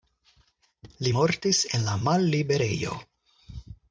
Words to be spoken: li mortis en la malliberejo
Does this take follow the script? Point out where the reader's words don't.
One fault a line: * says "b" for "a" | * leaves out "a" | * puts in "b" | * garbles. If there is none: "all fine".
all fine